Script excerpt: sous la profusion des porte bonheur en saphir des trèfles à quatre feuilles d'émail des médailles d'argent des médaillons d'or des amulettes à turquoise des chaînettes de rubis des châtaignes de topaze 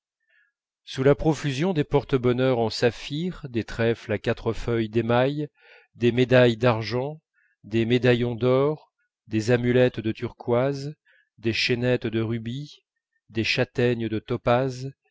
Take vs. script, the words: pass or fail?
fail